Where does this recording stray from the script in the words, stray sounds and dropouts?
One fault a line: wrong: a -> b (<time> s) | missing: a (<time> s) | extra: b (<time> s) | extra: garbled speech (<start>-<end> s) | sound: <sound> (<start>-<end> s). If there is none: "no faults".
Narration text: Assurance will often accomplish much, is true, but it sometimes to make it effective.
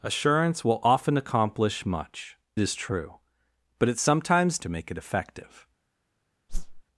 sound: whoosh (6.5-6.8 s)